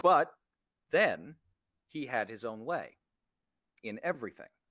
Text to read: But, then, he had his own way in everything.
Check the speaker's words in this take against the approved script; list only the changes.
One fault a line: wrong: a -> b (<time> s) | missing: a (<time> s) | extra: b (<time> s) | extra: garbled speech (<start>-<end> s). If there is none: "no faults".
no faults